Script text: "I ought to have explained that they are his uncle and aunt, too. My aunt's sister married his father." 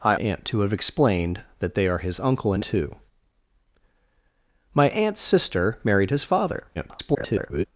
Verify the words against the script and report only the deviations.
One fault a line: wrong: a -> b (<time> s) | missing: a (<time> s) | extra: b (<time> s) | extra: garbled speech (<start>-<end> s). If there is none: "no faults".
wrong: ought -> aunt (0.2 s)
missing: aunt (2.6 s)
extra: garbled speech (6.7-7.6 s)